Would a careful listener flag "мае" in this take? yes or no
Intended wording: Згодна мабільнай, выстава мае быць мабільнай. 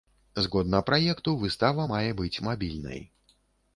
no